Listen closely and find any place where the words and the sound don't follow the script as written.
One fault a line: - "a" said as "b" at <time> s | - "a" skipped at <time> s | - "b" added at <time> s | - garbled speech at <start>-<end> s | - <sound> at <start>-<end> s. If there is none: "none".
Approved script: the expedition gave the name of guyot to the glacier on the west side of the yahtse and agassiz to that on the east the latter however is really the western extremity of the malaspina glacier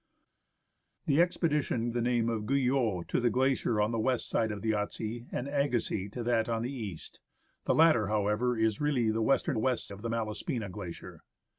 - "gave" skipped at 1.9 s
- "extremity" said as "west" at 9.6 s